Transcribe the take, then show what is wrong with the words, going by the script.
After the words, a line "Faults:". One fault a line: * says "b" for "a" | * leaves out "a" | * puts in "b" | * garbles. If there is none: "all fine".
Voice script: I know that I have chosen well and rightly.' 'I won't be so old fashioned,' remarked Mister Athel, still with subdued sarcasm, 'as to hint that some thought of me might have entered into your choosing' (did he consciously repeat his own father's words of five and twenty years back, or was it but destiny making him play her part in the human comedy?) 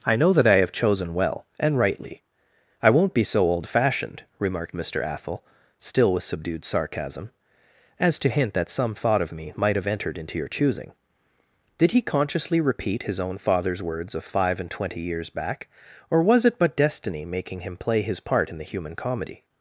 I know that I have chosen well and rightly.' 'I won't be so old fashioned,' remarked Mister Athel, still with subdued sarcasm, 'as to hint that some thought of me might have entered into your choosing' (did he consciously repeat his own father's words of five and twenty years back, or was it but destiny making him play his part in the human comedy?)
Faults:
* says "his" for "her"